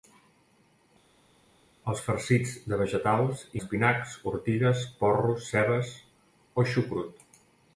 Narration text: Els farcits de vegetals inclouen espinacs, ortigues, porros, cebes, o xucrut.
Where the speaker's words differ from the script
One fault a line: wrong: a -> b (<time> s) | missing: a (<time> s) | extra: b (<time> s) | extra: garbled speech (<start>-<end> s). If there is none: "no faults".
missing: inclouen (3.4 s)